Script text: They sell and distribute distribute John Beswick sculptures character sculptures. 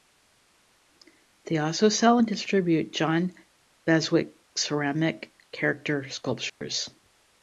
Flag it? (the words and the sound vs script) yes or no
yes